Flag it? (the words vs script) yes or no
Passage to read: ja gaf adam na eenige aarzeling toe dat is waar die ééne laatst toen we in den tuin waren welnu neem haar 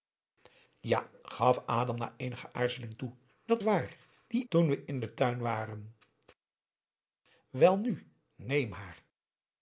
yes